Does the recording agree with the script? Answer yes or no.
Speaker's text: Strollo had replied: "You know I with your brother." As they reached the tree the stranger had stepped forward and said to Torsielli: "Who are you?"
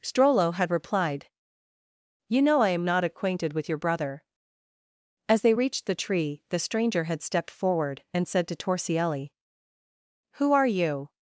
no